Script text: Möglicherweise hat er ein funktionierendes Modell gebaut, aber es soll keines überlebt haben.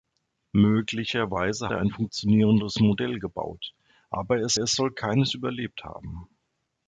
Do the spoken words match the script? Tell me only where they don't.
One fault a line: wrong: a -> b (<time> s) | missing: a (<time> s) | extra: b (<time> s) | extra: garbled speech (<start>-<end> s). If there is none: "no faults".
missing: hat (1.7 s)
extra: es (4.6 s)